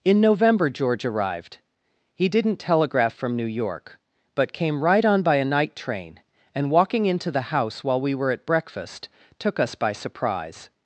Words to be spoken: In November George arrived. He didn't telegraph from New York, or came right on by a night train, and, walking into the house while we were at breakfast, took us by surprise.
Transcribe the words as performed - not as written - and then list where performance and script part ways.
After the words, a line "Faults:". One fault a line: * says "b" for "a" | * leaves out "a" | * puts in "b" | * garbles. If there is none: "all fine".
In November George arrived. He didn't telegraph from New York, but came right on by a night train, and, walking into the house while we were at breakfast, took us by surprise.
Faults:
* says "but" for "or"